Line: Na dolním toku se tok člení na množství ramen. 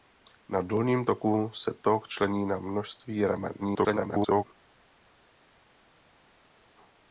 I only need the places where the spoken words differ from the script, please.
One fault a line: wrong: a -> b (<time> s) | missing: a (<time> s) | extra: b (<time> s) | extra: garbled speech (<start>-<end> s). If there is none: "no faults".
extra: garbled speech (3.6-4.4 s)